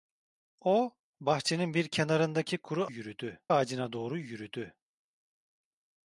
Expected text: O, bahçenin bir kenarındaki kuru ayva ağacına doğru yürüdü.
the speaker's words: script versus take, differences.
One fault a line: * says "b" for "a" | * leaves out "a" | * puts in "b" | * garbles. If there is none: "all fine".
* says "yürüdü" for "ayva"